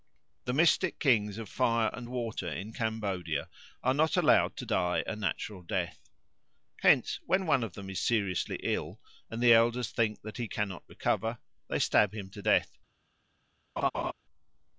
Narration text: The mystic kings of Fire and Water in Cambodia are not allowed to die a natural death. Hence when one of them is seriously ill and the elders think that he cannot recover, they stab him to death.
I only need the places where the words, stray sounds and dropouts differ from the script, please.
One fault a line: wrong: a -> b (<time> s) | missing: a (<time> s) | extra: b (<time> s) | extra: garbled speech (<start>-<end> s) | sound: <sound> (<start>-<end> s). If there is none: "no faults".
sound: laugh (13.8-14.1 s)